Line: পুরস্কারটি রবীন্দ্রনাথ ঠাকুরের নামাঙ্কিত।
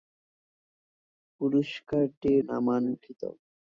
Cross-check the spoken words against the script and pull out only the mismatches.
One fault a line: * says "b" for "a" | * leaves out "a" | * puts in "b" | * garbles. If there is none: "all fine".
* leaves out "রবীন্দ্রনাথ ঠাকুরের"